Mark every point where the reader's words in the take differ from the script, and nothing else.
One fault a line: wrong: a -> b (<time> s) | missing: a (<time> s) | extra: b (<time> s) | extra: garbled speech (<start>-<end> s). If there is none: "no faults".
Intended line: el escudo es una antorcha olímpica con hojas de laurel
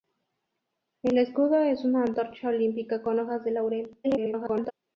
extra: garbled speech (4.0-4.7 s)